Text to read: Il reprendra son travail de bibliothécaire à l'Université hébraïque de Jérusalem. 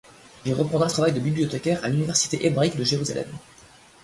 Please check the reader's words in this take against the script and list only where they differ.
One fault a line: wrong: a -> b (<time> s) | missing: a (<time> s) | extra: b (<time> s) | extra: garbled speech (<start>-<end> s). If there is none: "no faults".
missing: son (0.9 s)